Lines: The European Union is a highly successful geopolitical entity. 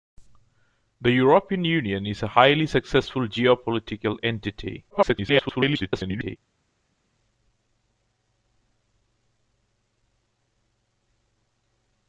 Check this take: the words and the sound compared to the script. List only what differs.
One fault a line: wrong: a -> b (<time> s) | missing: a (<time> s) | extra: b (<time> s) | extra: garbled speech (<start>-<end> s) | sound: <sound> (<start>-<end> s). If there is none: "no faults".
extra: garbled speech (4.9-6.4 s)